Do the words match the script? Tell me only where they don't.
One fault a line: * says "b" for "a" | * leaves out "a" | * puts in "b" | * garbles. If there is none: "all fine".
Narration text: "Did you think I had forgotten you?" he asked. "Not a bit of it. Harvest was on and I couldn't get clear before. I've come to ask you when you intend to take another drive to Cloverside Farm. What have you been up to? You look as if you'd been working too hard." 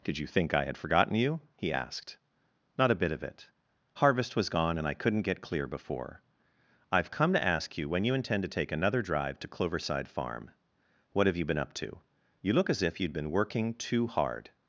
* says "gone" for "on"